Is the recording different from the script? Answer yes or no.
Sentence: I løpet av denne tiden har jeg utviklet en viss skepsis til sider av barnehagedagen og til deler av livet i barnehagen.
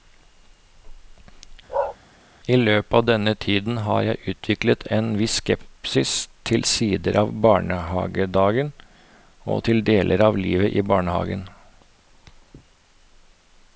no